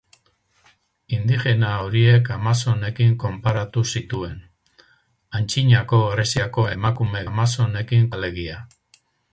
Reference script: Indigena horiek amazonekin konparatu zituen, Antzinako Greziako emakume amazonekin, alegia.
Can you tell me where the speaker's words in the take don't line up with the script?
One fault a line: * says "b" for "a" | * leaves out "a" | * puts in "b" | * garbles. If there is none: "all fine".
all fine